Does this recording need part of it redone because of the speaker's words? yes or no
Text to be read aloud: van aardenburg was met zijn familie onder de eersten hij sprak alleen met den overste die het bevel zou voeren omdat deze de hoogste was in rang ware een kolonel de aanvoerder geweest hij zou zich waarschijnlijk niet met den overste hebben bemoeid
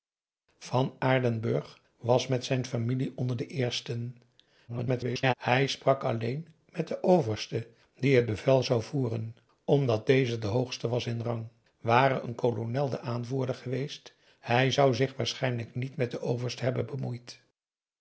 yes